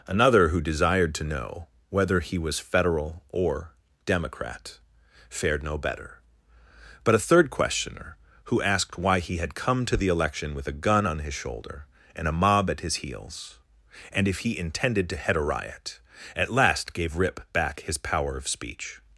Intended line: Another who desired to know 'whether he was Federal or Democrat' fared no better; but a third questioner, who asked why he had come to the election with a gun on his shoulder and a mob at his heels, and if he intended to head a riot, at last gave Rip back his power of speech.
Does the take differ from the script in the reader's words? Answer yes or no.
no